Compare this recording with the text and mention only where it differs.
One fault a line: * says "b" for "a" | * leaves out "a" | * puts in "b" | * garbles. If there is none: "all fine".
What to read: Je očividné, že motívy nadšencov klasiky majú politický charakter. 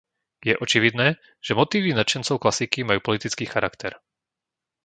all fine